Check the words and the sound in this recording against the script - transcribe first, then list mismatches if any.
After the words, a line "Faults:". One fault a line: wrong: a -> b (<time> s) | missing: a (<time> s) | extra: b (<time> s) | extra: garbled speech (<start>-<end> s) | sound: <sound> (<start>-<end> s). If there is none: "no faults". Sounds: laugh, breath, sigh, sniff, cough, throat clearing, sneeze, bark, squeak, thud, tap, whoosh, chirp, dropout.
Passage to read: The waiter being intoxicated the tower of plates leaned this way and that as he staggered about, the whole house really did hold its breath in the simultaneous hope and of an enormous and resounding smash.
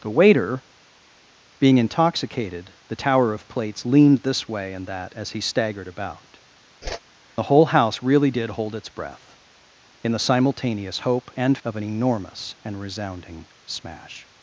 The waiter being intoxicated the tower of plates leaned this way and that as he staggered about, the whole house really did hold its breath in the simultaneous hope and of an enormous and resounding smash.
Faults:
sound: whoosh (6.8-7.0 s)